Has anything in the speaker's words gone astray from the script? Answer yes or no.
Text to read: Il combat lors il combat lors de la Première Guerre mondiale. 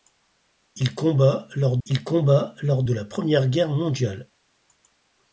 no